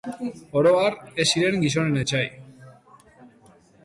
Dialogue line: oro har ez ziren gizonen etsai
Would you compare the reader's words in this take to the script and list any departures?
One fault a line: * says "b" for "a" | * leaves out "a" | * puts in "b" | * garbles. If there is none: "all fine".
all fine